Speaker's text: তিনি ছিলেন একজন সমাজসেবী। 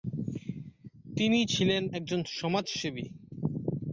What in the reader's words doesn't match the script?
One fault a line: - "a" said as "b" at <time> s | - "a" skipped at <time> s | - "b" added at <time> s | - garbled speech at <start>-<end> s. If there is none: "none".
none